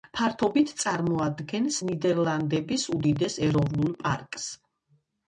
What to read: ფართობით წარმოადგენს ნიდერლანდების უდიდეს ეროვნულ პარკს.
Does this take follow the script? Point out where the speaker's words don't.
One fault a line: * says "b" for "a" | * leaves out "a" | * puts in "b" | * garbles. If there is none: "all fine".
all fine